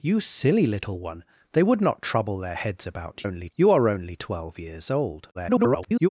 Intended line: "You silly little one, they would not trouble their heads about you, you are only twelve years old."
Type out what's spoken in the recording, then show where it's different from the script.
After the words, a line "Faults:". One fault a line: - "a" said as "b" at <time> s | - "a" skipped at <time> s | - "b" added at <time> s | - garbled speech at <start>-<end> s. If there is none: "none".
"You silly little one, they would not trouble their heads about only, you are only twelve years old." [garbled]
Faults:
- "you" said as "only" at 3.2 s
- garbled speech at 5.3-6.1 s